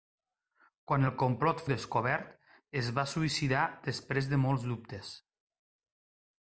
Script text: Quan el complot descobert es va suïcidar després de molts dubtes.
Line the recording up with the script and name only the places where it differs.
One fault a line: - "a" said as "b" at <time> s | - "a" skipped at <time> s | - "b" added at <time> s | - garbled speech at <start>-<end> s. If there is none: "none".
none